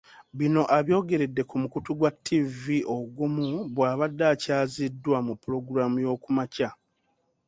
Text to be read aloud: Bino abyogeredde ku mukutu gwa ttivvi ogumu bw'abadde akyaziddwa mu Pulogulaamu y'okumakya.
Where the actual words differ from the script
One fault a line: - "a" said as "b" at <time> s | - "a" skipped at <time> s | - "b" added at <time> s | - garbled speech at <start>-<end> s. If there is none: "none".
none